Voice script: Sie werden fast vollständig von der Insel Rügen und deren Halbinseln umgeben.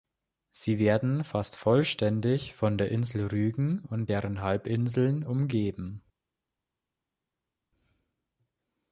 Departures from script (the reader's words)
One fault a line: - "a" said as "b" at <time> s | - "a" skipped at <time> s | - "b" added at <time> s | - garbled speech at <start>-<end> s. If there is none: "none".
none